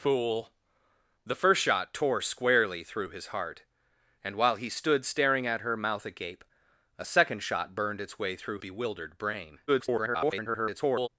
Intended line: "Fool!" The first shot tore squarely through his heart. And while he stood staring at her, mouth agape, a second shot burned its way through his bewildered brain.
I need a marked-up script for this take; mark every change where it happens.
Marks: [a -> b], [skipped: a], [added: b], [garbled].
"Fool!" The first shot tore squarely through his heart. And while he stood staring at her, mouth agape, a second shot burned its way through [skipped: his] bewildered brain. [garbled]